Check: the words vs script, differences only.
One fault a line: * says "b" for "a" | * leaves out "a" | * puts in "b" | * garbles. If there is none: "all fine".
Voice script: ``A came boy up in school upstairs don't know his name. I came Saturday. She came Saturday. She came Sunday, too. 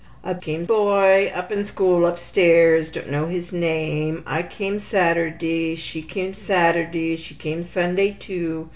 all fine